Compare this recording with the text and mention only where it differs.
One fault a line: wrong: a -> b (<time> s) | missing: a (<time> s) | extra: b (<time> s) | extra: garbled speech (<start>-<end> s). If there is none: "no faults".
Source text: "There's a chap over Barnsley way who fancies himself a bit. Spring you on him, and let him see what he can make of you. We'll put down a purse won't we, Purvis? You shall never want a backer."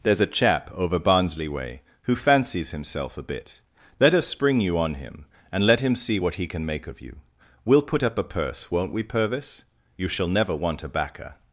extra: Let us (4.0 s)
wrong: down -> up (8.0 s)